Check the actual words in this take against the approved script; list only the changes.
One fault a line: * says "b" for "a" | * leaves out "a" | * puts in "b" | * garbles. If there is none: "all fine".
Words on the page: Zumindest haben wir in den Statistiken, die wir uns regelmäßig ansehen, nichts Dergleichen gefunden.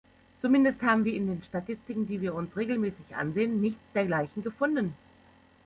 all fine